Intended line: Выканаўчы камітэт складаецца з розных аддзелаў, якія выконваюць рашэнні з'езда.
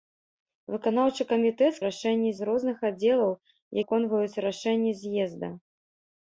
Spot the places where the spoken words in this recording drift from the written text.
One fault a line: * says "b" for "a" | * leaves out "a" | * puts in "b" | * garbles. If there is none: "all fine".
* says "рашэнні" for "складаецца"
* leaves out "якія"